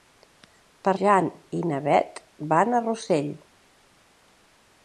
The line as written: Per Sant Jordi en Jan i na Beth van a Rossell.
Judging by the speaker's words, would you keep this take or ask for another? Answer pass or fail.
fail